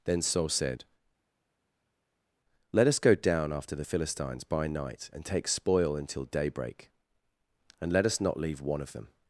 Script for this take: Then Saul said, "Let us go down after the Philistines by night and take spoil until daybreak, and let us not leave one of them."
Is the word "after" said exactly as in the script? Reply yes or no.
yes